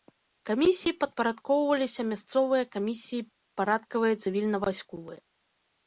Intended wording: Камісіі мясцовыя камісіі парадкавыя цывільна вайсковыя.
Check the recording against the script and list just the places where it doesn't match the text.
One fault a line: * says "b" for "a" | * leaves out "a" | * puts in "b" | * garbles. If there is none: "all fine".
* puts in "падпарадкоўваліся"